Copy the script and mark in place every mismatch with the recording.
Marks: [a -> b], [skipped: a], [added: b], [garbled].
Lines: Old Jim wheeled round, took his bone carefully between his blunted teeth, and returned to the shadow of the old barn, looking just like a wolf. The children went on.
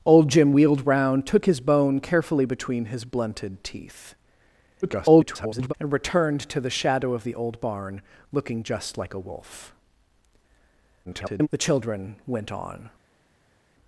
Old Jim wheeled round, took his bone carefully between his blunted teeth, [garbled] and returned to the shadow of the old barn, looking just like a wolf. [garbled] The children went on.